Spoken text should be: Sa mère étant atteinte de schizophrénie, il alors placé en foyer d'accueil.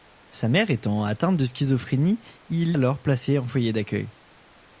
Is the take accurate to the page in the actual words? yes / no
yes